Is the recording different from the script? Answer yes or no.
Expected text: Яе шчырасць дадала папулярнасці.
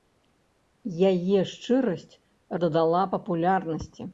no